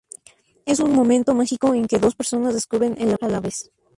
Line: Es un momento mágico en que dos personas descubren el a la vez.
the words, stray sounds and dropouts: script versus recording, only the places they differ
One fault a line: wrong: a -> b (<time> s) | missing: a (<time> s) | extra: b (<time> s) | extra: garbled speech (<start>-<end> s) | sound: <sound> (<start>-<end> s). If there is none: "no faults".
no faults